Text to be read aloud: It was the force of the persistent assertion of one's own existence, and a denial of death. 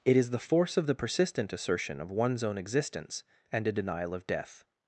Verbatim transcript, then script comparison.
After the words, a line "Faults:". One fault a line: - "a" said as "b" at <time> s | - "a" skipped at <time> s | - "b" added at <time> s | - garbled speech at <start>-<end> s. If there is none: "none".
It is the force of the persistent assertion of one's own existence, and a denial of death.
Faults:
- "was" said as "is" at 0.2 s